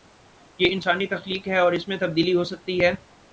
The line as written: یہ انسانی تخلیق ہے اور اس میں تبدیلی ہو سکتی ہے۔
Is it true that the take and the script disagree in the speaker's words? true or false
false